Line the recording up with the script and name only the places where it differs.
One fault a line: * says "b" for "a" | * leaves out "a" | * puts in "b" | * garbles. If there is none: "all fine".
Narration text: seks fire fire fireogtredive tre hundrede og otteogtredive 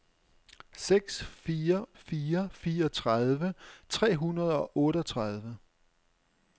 all fine